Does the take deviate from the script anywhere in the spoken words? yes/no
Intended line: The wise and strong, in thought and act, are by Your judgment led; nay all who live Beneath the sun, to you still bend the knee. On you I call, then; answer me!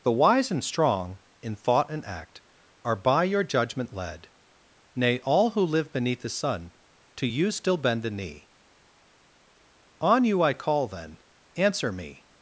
no